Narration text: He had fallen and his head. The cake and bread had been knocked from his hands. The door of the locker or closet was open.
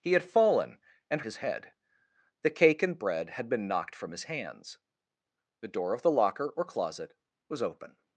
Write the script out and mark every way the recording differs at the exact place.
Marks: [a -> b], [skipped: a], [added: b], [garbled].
He had fallen and his head. The cake and bread had been knocked from his hands. The door of the locker or closet was open.